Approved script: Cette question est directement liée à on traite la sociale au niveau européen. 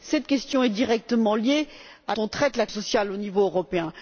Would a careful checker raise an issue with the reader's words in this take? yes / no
no